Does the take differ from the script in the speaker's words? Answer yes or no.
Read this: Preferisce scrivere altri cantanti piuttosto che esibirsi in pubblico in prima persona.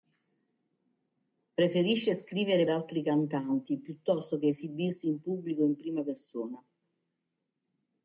no